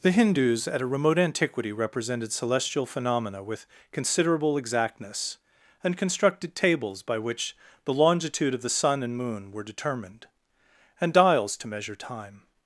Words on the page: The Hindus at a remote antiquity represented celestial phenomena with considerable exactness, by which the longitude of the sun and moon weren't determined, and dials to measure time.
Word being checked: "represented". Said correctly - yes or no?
yes